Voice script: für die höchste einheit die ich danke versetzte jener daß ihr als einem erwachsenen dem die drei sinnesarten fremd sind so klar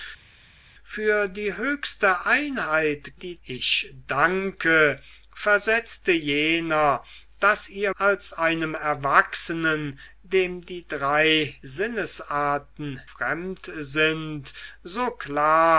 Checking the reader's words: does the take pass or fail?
pass